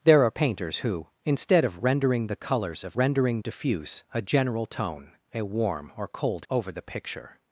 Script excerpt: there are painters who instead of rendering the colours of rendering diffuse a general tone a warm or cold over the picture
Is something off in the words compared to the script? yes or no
no